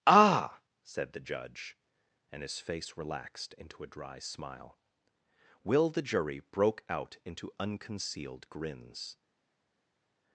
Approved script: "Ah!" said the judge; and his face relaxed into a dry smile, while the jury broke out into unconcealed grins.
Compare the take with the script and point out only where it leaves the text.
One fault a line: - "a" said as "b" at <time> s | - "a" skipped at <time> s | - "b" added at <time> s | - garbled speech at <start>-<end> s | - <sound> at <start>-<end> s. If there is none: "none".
- "while" said as "will" at 5.6 s